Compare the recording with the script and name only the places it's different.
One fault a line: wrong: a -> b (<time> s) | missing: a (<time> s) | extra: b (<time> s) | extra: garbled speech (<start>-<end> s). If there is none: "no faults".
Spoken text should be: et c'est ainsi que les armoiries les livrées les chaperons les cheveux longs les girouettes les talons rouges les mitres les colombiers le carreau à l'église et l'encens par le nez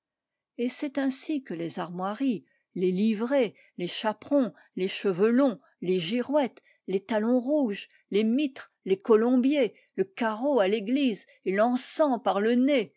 no faults